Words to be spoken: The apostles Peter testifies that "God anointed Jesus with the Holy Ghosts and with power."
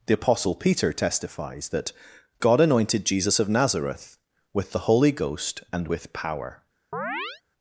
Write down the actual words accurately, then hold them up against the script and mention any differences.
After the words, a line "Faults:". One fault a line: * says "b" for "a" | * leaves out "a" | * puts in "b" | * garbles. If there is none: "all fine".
The apostle Peter testifies that "God anointed Jesus of Nazareth with the Holy Ghost and with power."
Faults:
* says "apostle" for "apostles"
* puts in "of Nazareth"
* says "Ghost" for "Ghosts"